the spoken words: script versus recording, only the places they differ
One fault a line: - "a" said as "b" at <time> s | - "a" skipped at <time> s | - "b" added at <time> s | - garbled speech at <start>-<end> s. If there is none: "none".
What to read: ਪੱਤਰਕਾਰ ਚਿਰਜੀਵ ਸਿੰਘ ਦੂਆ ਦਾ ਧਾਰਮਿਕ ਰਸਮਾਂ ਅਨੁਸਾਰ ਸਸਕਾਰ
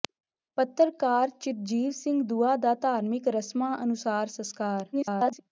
- garbled speech at 4.9-5.4 s